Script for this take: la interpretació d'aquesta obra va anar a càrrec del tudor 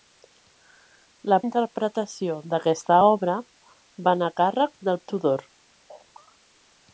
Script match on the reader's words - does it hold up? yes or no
yes